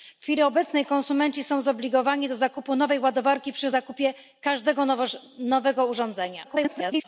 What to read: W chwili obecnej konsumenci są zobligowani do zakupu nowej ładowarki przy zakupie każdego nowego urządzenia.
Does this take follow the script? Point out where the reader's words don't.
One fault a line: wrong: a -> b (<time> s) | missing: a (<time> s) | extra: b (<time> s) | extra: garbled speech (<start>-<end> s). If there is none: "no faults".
extra: garbled speech (6.4-7.0 s)